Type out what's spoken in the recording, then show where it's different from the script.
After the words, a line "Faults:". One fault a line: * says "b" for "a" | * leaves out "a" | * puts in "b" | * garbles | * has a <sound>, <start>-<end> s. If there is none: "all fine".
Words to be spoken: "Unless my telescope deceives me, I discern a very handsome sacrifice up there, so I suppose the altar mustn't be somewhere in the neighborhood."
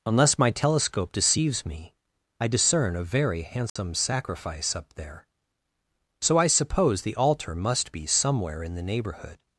"Unless my telescope deceives me, I discern a very handsome sacrifice up there, so I suppose the altar must be somewhere in the neighborhood."
Faults:
* has a dropout, 3.7-3.8 s
* says "must" for "mustn't"